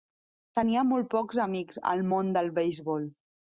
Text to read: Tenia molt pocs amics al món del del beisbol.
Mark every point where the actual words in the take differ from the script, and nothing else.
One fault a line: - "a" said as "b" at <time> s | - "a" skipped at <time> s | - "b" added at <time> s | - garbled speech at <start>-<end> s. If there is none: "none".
- "del" skipped at 2.6 s